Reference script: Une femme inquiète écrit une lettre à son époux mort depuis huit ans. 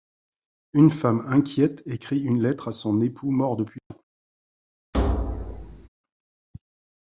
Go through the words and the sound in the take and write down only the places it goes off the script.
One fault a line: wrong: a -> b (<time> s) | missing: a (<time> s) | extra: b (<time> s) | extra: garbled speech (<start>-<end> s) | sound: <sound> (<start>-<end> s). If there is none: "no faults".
missing: huit (3.8 s)
sound: thud (4.9-5.9 s)